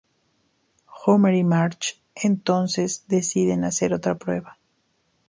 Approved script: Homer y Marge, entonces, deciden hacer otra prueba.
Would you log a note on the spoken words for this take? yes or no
no